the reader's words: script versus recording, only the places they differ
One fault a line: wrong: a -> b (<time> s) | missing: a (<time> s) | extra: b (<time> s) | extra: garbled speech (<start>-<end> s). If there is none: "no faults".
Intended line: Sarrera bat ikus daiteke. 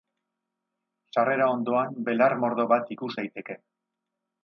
extra: ondoan belar mordo (1.6 s)